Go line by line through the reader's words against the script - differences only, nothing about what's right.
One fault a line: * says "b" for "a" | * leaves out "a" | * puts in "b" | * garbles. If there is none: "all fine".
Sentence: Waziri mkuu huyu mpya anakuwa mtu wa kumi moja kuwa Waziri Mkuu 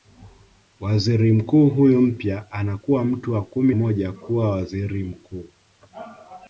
all fine